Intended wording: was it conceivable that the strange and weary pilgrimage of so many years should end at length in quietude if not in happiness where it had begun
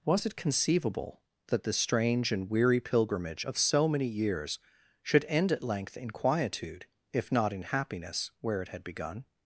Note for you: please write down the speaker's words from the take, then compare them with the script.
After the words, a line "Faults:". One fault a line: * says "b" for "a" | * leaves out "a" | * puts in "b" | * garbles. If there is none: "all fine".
was it conceivable that the strange and weary pilgrimage of so many years should end at length in quietude if not in happiness where it had begun
Faults:
all fine